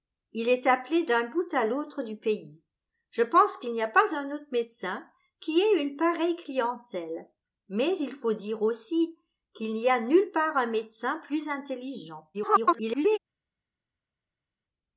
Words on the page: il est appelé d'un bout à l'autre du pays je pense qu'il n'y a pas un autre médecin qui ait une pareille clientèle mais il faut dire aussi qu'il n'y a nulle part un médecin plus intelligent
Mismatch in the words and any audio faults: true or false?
true